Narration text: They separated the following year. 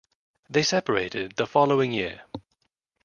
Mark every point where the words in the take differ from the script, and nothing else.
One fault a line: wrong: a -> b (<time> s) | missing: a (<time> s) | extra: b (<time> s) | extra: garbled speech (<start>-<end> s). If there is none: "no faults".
no faults